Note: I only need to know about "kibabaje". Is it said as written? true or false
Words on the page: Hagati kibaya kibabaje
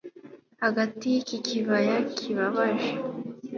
true